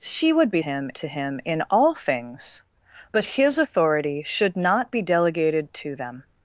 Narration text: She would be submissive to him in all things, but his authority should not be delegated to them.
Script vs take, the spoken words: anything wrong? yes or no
yes